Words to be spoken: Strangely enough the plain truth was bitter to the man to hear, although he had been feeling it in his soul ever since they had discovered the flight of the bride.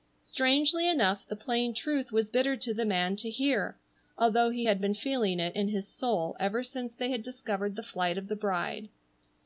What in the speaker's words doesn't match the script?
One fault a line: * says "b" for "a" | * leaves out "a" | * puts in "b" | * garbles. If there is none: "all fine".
all fine